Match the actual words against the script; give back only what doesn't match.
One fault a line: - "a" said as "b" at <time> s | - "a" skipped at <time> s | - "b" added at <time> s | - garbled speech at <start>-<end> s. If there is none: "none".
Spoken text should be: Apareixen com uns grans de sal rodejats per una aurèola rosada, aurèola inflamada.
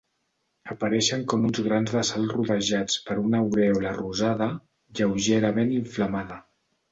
- "aurèola" said as "lleugerament" at 5.0 s